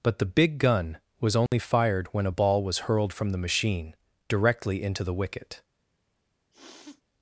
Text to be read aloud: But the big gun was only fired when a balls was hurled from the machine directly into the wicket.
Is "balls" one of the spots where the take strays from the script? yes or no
yes